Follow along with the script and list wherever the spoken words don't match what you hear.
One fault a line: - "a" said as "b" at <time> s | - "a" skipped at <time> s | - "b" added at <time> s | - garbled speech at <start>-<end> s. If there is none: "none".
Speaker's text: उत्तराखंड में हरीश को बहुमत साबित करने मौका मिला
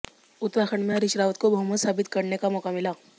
- "रावत" added at 1.2 s
- "का" added at 2.4 s